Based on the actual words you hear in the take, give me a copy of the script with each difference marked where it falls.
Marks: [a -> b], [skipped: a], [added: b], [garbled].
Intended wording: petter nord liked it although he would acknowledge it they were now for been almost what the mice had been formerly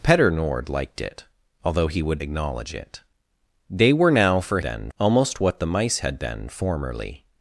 petter nord liked it although he would acknowledge it they were now for been almost what the mice had been formerly